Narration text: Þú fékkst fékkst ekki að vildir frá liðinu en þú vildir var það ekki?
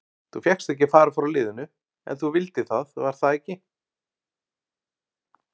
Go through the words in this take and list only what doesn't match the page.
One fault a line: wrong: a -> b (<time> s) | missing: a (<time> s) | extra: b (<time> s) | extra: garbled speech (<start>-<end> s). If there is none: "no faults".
missing: fékkst (0.7 s)
wrong: vildir -> fara (0.9 s)
extra: það (2.7 s)